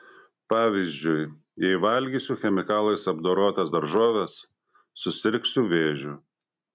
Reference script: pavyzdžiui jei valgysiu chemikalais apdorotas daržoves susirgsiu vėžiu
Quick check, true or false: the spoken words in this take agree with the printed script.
true